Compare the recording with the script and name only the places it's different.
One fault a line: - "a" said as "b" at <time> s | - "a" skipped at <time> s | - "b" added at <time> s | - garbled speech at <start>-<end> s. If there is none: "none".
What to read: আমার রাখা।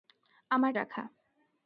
none